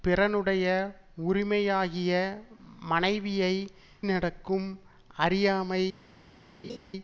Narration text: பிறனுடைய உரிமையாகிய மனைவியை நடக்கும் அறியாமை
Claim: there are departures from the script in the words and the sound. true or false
true